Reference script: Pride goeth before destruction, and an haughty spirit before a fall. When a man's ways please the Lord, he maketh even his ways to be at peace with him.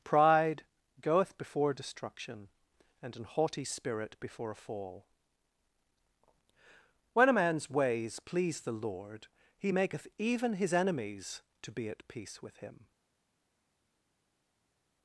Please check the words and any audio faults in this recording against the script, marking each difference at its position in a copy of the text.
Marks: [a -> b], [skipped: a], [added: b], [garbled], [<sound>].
Pride goeth before destruction, and an haughty spirit before a fall. When a man's ways please the Lord, he maketh even his [ways -> enemies] to be at peace with him.